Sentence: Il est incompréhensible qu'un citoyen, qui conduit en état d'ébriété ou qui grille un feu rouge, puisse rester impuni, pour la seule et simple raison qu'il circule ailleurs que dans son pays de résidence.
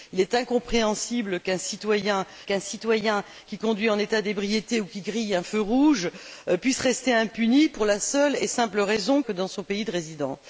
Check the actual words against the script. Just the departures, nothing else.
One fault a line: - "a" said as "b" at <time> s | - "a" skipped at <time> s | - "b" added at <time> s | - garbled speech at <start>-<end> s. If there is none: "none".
- "qu'un citoyen" added at 2.4 s
- "qu'il circule ailleurs" skipped at 9.2 s